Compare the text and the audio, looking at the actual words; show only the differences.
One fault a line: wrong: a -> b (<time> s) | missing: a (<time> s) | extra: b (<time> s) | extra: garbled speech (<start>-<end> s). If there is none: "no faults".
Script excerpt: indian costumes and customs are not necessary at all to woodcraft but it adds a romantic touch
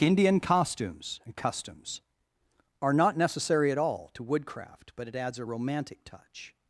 no faults